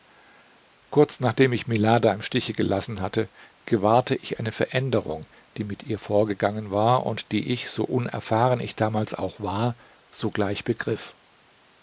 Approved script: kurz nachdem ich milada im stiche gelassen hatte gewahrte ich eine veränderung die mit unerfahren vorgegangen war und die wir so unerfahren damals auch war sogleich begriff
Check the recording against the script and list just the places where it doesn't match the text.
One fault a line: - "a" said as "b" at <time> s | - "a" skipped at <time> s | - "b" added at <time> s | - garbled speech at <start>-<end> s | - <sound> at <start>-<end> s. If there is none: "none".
- "unerfahren" said as "ihr" at 5.8 s
- "wir" said as "ich" at 7.5 s
- "ich" added at 8.6 s